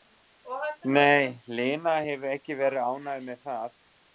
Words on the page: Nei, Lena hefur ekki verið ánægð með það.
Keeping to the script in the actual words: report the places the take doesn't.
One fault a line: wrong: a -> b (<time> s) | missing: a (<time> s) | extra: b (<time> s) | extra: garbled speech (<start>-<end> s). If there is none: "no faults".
no faults